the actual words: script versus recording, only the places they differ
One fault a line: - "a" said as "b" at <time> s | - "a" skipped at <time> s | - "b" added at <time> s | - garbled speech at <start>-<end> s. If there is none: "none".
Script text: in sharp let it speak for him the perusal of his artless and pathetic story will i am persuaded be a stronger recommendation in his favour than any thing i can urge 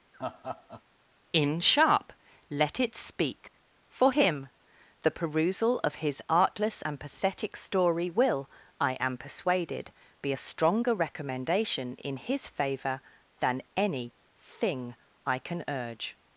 none